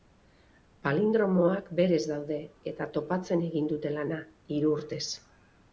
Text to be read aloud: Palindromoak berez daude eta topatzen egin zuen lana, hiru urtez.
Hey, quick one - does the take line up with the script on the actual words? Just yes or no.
no